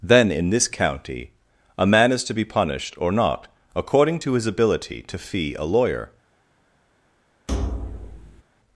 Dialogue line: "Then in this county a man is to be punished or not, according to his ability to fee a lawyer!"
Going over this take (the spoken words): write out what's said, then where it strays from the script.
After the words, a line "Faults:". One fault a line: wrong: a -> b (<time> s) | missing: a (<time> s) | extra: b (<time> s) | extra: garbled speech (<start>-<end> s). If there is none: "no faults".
"Then in this county a man is to be punished or not, according to his ability to fee a lawyer!"
Faults:
no faults